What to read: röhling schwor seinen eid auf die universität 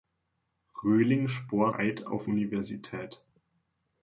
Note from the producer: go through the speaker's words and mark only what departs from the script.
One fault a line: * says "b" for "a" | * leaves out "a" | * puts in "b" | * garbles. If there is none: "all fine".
* leaves out "seinen"
* leaves out "die"